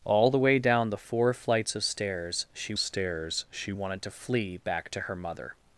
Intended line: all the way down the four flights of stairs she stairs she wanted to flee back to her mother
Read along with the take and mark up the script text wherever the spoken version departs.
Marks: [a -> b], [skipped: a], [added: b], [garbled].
all the way down the four flights of stairs she stairs she wanted to flee back to her mother